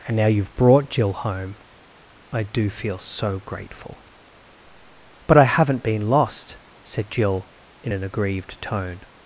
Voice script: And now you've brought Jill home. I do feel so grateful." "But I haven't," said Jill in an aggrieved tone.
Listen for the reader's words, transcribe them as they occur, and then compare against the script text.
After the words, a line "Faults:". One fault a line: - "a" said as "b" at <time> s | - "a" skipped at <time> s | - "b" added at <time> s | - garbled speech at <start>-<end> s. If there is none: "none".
And now you've brought Jill home. I do feel so grateful." "But I haven't been lost," said Jill in an aggrieved tone.
Faults:
- "been lost" added at 5.8 s